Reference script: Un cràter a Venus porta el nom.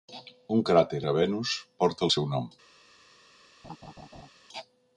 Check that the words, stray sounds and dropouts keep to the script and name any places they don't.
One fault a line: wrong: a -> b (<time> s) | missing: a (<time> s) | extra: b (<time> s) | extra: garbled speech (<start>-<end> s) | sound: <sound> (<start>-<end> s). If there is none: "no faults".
extra: seu (2.2 s)
sound: laugh (3.6-4.3 s)